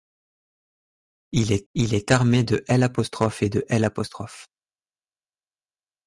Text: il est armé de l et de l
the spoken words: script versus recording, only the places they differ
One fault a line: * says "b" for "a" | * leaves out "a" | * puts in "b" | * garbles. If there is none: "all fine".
* puts in "il est"